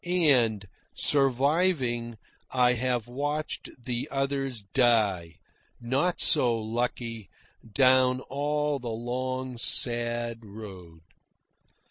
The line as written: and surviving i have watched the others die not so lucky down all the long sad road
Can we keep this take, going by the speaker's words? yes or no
yes